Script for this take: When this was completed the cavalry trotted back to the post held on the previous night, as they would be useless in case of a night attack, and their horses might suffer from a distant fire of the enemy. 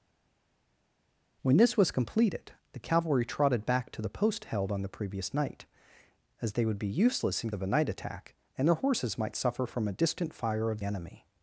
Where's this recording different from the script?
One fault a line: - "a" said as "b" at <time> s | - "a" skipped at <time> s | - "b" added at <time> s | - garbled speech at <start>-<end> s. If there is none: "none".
- "case" skipped at 7.5 s
- "the" skipped at 10.8 s